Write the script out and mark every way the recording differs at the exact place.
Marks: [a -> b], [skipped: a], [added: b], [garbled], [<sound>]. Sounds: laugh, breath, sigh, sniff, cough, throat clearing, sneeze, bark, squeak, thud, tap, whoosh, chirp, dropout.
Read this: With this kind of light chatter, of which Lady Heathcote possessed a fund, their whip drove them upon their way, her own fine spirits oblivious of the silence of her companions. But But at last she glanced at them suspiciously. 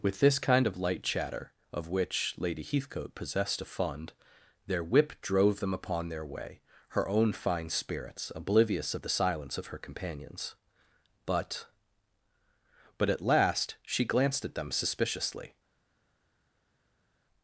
With this kind of light chatter, of which Lady Heathcote possessed a fund, their whip drove them upon their way, her own fine spirits oblivious of the silence of her companions. But But at last she glanced at them suspiciously.